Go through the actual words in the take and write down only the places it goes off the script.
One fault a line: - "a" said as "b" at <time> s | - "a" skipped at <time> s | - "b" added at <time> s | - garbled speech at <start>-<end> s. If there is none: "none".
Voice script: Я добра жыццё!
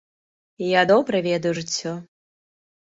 - "ведаю" added at 1.3 s